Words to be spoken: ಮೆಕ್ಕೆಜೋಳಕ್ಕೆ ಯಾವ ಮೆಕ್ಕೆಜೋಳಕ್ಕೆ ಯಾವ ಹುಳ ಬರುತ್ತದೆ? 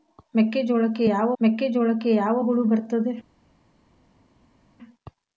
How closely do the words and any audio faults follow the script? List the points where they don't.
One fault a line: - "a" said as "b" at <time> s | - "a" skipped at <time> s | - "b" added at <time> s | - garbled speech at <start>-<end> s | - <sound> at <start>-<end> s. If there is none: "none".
none